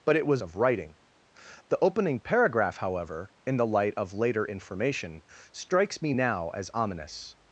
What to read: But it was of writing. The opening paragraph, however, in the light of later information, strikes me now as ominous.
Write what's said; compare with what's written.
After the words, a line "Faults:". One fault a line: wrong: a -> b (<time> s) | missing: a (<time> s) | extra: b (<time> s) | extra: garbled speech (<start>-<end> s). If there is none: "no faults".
But it was of writing. The opening paragraph, however, in the light of later information, strikes me now as ominous.
Faults:
no faults